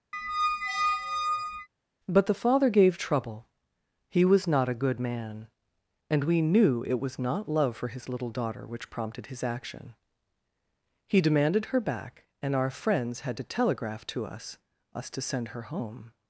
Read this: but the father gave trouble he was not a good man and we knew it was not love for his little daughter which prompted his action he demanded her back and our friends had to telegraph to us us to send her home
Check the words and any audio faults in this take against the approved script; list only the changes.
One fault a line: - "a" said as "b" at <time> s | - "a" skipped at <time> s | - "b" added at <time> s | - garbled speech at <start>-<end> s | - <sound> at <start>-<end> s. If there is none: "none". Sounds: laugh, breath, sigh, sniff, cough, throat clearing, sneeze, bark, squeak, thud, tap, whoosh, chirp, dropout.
- squeak at 0.1-1.7 s